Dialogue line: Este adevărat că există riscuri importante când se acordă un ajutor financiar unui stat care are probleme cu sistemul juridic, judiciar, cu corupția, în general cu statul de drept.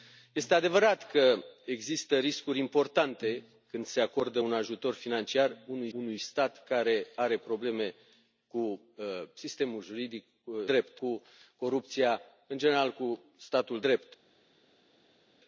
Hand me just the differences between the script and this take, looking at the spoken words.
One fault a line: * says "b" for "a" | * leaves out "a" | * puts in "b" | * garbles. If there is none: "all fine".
* puts in "unui"
* says "drept" for "judiciar"
* leaves out "de"